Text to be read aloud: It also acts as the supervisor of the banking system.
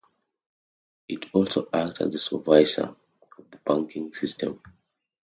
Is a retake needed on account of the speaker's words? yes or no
no